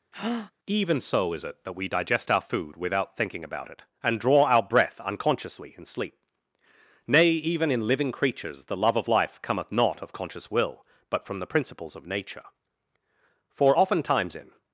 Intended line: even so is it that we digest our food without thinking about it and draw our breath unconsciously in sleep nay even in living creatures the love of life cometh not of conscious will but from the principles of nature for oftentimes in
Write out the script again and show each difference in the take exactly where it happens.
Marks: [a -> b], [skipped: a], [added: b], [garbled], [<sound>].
[breath] even so is it that we digest our food without thinking about it and draw our breath unconsciously in sleep nay even in living creatures the love of life cometh not of conscious will but from the principles of nature for oftentimes in